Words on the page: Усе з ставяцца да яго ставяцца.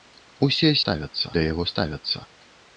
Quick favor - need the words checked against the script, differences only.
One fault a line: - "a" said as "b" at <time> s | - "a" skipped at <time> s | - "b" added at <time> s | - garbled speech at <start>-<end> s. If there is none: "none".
none